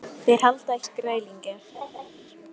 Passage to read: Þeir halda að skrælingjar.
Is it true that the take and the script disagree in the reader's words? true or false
false